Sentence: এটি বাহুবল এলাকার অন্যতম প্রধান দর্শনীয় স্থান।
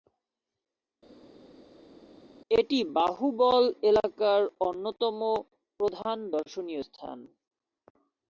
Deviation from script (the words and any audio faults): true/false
false